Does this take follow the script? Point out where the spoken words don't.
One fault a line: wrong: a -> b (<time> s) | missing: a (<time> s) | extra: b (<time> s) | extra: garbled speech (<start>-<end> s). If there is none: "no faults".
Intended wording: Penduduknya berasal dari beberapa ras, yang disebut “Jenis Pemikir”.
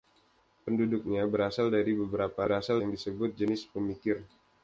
wrong: ras -> berasal (2.4 s)